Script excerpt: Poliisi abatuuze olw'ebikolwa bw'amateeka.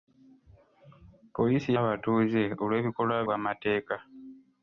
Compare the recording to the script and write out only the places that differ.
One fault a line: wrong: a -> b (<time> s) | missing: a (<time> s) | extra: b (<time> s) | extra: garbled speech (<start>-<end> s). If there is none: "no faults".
no faults